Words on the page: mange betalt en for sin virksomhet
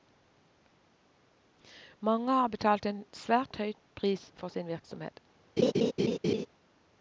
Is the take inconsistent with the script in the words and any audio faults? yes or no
yes